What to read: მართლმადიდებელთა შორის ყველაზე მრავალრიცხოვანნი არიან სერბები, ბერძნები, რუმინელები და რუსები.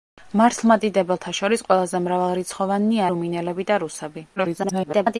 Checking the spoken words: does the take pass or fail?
fail